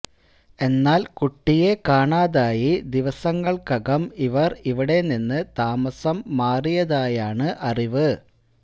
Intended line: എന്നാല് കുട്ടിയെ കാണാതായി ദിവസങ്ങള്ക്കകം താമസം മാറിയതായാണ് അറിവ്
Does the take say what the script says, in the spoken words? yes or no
no